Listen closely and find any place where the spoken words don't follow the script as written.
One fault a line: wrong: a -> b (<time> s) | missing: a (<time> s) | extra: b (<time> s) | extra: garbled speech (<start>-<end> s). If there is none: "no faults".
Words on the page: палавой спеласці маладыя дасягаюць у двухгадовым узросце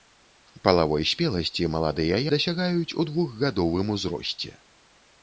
no faults